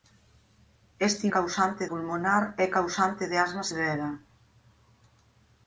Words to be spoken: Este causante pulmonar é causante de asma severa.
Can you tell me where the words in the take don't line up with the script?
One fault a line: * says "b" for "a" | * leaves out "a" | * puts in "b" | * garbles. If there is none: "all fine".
all fine